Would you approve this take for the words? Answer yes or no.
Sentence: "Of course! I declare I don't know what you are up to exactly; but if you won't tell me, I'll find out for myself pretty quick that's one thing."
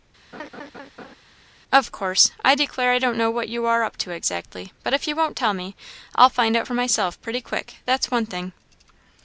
yes